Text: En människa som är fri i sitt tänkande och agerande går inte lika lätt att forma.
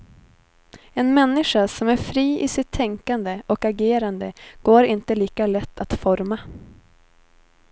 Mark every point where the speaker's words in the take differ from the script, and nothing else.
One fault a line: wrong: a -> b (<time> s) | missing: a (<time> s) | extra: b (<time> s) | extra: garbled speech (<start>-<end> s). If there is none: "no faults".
no faults